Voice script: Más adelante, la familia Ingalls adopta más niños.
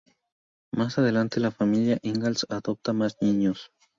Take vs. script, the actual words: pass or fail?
pass